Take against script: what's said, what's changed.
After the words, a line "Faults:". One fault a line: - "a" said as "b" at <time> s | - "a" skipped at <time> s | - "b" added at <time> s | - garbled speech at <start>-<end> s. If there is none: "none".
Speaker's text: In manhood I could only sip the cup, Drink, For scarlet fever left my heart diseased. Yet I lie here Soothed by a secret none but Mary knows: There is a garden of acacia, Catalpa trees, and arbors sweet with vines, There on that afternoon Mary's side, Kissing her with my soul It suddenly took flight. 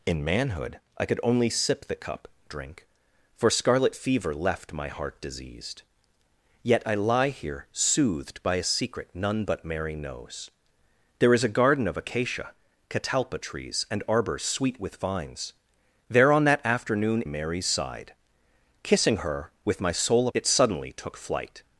In manhood I could only sip the cup, Drink, For scarlet fever left my heart diseased. Yet I lie here Soothed by a secret none but Mary knows: There is a garden of acacia, Catalpa trees, and arbors sweet with vines, There on that afternoon Mary's side, Kissing her with my soul It suddenly took flight.
Faults:
none